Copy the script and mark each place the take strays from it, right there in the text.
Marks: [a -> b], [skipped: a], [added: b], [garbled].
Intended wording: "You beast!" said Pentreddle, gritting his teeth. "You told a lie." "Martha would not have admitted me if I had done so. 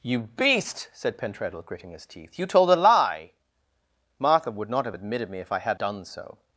"You beast!" said Pentreddle, gritting his teeth. "You told a lie." "Martha would not have admitted me if I had done so.